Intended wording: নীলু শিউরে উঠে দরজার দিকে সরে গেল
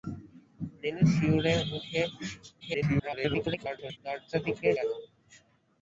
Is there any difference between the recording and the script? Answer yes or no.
yes